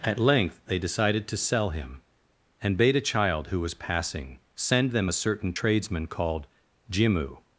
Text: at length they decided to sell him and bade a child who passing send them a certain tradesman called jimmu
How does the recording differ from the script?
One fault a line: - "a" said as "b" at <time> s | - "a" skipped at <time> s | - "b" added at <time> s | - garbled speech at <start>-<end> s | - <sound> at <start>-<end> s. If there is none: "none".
- "was" added at 3.6 s